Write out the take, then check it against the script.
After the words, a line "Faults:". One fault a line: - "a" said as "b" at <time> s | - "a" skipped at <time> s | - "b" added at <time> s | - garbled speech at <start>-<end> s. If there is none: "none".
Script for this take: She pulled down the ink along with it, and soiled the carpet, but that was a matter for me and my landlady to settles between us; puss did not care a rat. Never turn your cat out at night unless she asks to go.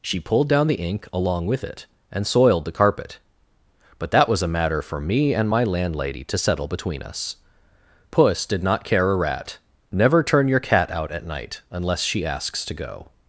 She pulled down the ink along with it, and soiled the carpet, but that was a matter for me and my landlady to settle between us; puss did not care a rat. Never turn your cat out at night unless she asks to go.
Faults:
- "settles" said as "settle" at 6.4 s